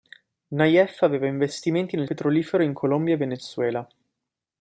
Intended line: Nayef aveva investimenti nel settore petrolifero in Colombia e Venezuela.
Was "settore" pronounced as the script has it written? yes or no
no